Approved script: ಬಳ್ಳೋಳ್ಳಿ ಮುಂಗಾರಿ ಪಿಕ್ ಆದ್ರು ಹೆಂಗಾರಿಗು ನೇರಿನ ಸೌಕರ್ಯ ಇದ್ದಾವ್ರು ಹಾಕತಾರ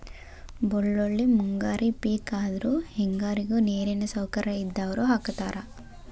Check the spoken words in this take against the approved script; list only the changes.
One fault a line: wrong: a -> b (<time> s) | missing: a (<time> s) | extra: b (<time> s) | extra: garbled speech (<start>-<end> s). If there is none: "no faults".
no faults